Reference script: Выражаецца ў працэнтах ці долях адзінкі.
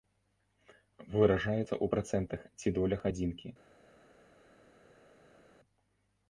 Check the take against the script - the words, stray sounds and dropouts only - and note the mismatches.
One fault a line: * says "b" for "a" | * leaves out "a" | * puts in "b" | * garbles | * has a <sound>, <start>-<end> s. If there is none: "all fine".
all fine